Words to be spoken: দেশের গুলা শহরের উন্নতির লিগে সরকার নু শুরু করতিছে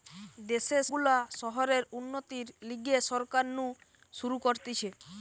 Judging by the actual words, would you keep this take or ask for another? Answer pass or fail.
pass